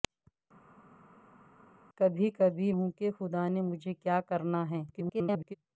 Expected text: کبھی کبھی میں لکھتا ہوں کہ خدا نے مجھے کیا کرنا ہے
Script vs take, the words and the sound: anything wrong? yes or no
yes